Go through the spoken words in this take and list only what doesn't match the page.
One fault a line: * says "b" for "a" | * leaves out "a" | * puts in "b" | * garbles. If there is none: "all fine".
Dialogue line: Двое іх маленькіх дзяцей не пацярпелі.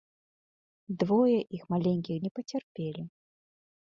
* leaves out "дзяцей"